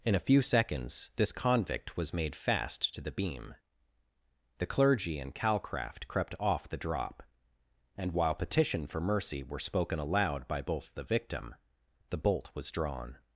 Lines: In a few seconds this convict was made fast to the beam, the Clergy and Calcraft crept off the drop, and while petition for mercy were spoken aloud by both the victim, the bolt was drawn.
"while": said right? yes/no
yes